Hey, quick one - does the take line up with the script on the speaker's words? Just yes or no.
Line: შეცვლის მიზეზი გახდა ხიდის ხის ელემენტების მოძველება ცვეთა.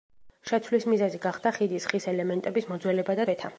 yes